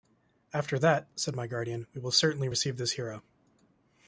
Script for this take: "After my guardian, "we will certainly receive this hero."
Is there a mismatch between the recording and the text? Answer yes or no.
yes